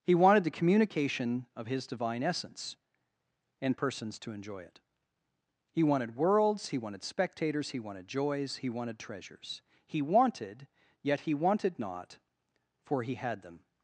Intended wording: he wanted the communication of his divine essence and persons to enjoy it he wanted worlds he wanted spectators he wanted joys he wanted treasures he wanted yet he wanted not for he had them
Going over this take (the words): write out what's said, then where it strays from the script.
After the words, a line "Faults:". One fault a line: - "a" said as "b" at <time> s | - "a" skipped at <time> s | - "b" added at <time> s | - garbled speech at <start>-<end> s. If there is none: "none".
he wanted the communication of his divine essence and persons to enjoy it he wanted worlds he wanted spectators he wanted joys he wanted treasures he wanted yet he wanted not for he had them
Faults:
none